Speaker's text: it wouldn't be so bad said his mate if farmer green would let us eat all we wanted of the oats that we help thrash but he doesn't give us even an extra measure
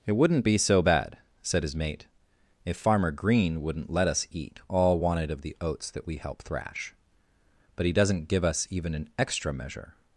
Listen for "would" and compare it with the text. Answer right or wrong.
wrong